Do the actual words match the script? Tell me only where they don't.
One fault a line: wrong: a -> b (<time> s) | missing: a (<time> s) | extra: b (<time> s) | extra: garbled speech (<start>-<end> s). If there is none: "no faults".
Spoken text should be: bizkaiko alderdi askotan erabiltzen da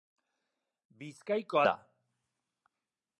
missing: alderdi askotan erabiltzen (1.6 s)